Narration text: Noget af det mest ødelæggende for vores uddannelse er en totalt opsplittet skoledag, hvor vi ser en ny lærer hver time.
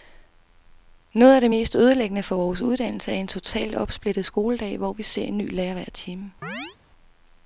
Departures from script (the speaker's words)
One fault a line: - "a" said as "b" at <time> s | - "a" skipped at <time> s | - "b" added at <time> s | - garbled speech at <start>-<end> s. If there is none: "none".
none